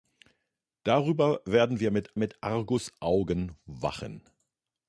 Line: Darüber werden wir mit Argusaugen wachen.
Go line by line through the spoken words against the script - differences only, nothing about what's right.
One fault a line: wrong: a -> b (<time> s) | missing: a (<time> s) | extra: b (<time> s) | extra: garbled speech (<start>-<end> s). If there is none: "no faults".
extra: mit (2.2 s)